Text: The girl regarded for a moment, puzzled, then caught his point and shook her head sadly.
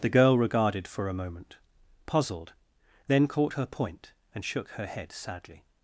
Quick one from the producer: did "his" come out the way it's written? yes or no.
no